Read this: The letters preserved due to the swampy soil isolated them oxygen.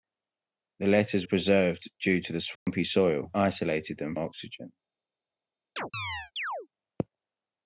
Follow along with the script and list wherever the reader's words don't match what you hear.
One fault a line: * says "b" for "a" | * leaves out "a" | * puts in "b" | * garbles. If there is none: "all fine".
all fine